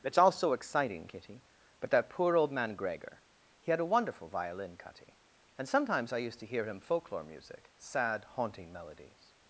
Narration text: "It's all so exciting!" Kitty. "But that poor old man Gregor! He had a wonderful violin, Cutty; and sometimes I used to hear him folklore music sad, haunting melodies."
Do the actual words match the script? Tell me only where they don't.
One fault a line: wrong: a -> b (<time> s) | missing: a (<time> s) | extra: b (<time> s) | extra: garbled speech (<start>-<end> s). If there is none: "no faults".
no faults